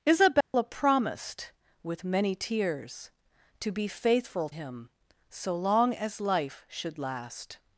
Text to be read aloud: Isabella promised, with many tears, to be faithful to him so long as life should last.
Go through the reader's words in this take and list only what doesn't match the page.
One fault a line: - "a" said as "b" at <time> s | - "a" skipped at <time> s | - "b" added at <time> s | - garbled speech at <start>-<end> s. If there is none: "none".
- "to" skipped at 4.5 s